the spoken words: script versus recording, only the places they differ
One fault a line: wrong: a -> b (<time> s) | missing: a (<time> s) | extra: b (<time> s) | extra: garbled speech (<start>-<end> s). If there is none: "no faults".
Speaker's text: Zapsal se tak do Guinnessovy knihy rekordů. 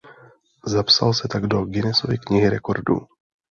no faults